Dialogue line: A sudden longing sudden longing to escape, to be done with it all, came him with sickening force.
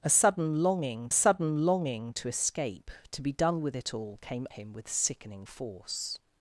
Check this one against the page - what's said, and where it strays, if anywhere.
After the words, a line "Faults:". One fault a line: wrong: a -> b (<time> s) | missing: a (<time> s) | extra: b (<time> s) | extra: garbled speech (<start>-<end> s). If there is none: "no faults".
A sudden longing sudden longing to escape, to be done with it all, came him with sickening force.
Faults:
no faults